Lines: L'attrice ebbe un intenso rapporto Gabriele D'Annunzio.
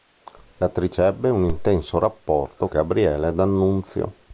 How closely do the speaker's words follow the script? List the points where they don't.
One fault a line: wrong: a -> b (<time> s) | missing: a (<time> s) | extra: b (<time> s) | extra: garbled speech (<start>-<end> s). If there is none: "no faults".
no faults